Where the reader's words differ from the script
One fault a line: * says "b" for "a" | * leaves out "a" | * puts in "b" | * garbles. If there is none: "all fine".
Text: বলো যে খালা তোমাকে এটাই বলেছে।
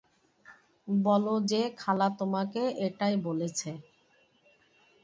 all fine